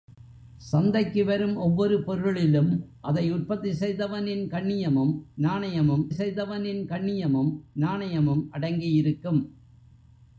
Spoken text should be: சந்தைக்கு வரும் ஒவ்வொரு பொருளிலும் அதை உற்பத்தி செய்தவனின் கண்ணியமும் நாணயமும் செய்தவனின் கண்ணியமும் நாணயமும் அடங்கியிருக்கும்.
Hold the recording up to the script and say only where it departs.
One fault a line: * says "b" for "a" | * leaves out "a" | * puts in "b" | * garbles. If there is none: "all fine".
all fine